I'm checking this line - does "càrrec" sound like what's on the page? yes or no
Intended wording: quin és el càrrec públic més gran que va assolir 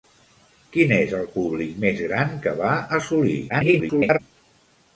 no